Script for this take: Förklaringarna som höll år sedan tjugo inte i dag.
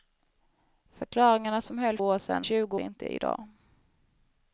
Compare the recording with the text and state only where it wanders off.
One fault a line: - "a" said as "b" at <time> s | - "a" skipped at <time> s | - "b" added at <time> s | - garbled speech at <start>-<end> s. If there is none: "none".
none